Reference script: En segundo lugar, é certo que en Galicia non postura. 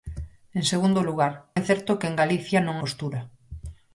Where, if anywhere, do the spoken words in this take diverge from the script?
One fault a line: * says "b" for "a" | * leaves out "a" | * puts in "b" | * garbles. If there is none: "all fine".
all fine